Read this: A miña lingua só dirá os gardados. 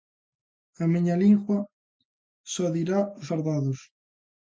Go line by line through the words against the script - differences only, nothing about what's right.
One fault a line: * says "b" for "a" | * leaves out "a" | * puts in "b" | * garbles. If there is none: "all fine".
all fine